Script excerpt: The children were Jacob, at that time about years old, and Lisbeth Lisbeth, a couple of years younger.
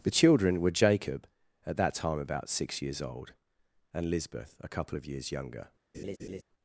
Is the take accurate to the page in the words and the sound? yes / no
no